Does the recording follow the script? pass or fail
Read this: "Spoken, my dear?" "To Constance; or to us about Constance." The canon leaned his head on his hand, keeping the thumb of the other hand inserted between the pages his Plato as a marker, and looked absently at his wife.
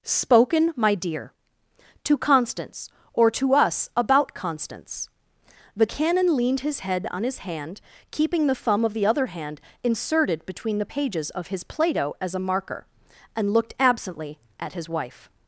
fail